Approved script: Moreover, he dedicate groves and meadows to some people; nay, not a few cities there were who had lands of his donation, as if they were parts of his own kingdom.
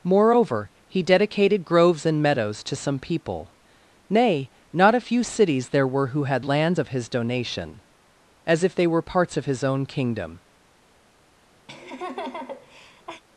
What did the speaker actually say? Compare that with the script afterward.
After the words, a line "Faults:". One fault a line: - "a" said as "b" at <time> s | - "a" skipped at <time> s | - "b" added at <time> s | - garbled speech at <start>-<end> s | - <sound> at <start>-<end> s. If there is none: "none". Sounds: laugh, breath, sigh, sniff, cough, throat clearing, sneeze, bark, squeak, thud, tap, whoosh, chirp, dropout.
Moreover, he dedicated groves and meadows to some people; nay, not a few cities there were who had lands of his donation, as if they were parts of his own kingdom.
Faults:
- "dedicate" said as "dedicated" at 1.0 s
- laugh at 11.7-13.2 s